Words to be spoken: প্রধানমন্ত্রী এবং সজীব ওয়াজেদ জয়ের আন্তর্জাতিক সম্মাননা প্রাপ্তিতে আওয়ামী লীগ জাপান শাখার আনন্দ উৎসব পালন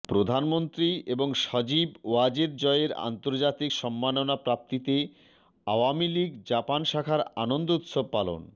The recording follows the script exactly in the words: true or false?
true